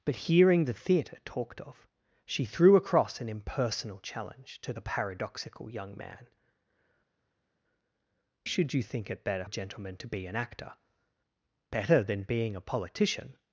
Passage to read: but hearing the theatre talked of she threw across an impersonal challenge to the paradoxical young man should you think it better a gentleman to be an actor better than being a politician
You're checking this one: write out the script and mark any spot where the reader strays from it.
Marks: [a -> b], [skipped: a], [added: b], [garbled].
but hearing the theatre talked of she threw across an impersonal challenge to the paradoxical young man should you think it better a gentleman to be an actor better than being a politician